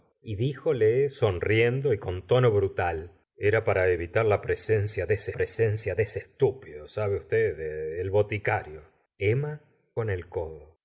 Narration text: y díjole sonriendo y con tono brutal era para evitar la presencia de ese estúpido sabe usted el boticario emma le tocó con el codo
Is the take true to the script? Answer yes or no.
no